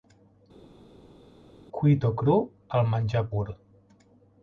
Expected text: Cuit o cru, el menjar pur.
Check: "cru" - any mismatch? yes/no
no